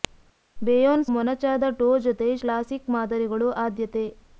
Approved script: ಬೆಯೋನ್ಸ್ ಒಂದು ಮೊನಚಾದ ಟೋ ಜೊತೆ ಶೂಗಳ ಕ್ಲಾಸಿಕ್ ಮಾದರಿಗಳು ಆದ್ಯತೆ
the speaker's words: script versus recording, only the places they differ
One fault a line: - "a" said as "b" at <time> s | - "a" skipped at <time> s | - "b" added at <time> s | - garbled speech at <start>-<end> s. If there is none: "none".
- "ಒಂದು" skipped at 1.1 s
- "ಶೂಗಳ" skipped at 2.3 s